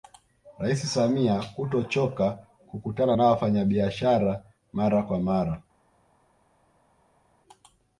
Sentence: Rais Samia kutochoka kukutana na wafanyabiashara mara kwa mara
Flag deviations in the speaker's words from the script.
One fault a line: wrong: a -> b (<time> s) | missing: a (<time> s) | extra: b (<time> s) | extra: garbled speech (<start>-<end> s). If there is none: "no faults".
no faults